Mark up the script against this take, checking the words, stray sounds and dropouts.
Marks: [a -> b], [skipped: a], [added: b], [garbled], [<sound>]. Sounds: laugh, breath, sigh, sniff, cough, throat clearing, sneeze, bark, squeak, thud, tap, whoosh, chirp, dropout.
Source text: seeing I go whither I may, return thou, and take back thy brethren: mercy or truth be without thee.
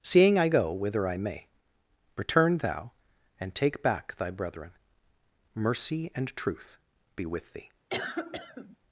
seeing I go whither I may, return thou, and take back thy brethren: mercy [or -> and] truth be [without -> with] thee. [cough]